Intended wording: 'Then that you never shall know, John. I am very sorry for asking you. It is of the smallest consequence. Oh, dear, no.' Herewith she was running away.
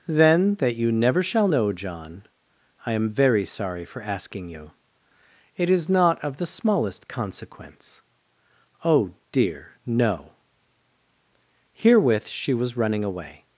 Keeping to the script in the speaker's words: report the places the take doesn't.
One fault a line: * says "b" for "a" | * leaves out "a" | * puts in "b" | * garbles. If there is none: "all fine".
* puts in "not"